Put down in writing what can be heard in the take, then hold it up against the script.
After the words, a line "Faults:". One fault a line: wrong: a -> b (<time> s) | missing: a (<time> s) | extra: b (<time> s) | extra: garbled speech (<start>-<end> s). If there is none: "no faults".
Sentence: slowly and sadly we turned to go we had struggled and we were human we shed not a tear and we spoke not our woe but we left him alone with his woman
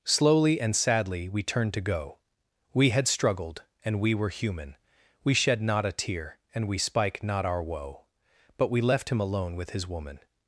slowly and sadly we turned to go we had struggled and we were human we shed not a tear and we spike not our woe but we left him alone with his woman
Faults:
wrong: spoke -> spike (6.8 s)